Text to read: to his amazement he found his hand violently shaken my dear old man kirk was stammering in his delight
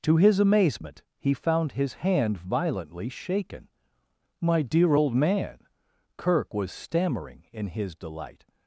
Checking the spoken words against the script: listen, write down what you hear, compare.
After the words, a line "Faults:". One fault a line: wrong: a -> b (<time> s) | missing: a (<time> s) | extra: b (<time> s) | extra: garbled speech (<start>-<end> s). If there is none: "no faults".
to his amazement he found his hand violently shaken my dear old man kirk was stammering in his delight
Faults:
no faults